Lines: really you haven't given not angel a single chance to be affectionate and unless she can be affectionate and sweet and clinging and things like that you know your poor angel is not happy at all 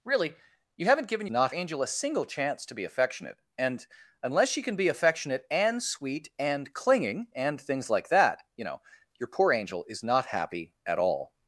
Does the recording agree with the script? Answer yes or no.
yes